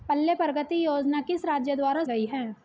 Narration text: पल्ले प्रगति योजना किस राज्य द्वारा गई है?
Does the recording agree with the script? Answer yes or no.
yes